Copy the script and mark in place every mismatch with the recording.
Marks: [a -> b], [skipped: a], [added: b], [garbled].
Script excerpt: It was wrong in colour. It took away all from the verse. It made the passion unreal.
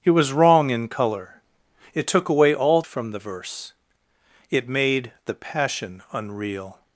It was wrong in colour. It took away all from the verse. It made the passion unreal.